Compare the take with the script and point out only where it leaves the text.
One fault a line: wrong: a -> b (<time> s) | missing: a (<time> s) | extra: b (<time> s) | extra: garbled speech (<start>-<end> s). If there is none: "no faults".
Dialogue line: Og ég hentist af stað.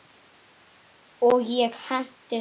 no faults